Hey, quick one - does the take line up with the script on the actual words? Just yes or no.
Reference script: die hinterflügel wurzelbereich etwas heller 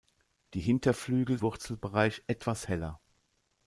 yes